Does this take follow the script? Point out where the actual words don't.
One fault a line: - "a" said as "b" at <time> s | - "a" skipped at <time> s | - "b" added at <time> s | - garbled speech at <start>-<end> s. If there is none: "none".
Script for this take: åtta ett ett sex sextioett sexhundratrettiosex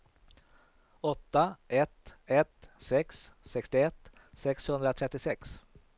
none